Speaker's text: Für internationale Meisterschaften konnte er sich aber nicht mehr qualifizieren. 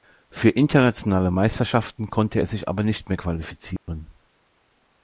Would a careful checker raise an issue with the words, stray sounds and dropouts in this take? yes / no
yes